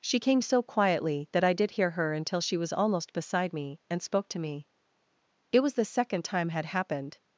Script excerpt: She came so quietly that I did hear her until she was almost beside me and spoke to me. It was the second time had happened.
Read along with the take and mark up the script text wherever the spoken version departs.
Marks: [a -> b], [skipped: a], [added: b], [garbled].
She came so quietly that I did hear her until she was almost beside me and spoke to me. It was the second time had happened.